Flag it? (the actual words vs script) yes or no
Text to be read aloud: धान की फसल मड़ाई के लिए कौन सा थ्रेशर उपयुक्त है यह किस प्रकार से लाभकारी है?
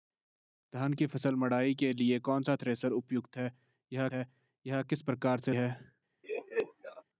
yes